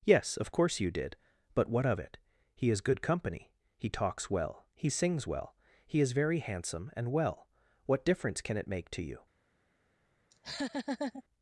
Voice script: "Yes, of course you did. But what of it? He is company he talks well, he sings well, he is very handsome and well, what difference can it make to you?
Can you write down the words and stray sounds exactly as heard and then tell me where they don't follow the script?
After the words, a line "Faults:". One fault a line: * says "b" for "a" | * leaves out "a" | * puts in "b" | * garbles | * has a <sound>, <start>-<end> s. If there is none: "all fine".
"Yes, of course you did. But what of it? He is good company he talks well, he sings well, he is very handsome and well, what difference can it make to you?
Faults:
* puts in "good"
* has a laugh, 10.3-11.2 s